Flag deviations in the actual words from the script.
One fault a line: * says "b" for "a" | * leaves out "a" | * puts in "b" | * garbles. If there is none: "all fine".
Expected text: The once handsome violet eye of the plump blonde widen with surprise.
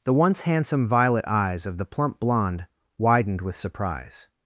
* says "eyes" for "eye"
* says "widened" for "widen"